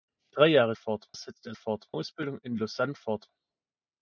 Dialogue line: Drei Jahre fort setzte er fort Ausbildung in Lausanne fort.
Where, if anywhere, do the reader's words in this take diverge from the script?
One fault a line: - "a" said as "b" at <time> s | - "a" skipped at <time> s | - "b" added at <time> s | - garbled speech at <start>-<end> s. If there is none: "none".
none